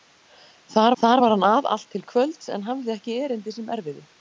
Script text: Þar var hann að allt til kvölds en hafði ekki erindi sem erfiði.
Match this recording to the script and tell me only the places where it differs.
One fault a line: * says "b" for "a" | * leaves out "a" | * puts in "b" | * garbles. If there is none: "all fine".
* puts in "þar"